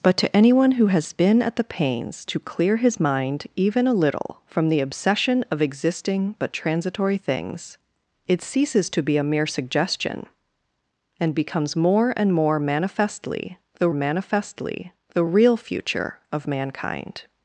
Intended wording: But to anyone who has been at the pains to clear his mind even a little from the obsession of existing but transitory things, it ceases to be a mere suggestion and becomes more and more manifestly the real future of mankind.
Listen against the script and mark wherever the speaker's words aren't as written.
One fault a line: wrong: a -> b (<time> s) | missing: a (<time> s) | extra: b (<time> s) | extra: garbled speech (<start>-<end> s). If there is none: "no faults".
extra: manifestly the (13.9 s)